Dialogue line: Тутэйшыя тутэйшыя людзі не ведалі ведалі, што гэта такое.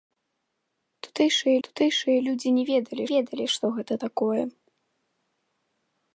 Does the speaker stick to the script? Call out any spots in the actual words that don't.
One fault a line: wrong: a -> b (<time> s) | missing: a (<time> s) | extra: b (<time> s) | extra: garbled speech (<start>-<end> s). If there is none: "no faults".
no faults